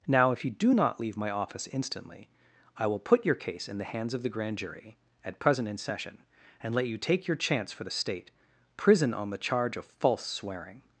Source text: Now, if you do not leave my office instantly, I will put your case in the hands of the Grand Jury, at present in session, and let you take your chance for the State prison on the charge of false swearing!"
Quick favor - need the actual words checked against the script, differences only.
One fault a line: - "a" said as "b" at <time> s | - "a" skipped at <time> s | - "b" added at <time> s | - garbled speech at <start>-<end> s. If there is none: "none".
none